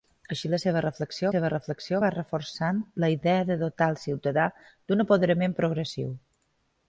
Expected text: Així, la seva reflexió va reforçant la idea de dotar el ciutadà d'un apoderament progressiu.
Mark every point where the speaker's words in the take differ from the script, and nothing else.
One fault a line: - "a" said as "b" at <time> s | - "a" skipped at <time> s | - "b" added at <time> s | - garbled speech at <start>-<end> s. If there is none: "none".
- "seva reflexió" added at 1.3 s